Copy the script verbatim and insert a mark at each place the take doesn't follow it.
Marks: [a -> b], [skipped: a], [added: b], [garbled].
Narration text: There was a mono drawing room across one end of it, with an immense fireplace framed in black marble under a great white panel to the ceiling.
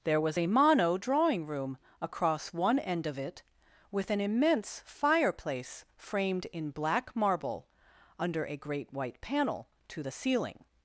There was a mono drawing room across one end of it, with an immense fireplace framed in black marble under a great white panel to the ceiling.